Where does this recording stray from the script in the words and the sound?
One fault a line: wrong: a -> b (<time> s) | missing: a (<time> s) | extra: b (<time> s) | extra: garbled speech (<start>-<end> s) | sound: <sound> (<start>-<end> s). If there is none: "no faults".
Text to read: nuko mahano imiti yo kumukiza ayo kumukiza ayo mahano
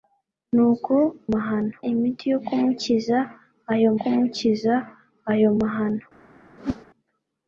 sound: whoosh (6.6-6.9 s)